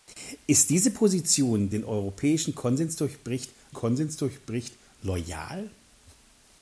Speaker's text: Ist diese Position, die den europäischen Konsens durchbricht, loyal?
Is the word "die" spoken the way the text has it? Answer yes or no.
no